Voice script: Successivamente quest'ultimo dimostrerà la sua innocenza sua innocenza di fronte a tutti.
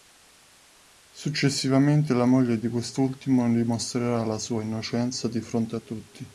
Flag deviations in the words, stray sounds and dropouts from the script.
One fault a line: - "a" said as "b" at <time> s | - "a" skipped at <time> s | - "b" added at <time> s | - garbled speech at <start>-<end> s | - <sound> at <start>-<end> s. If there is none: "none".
- "la moglie di" added at 2.1 s
- "sua innocenza" skipped at 5.3 s